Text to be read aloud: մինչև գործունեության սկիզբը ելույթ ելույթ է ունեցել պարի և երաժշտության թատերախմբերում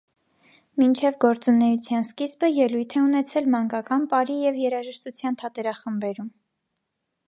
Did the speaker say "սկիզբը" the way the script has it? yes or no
yes